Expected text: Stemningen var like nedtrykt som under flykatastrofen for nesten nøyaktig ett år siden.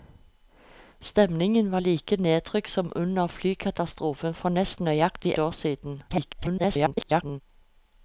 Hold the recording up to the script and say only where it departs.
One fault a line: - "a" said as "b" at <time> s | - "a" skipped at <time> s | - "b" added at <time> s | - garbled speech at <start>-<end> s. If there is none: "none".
- "ett" skipped at 5.3 s
- garbled speech at 6.1-7.4 s